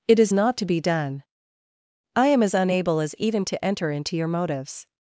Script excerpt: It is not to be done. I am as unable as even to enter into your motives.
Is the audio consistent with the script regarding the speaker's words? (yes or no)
yes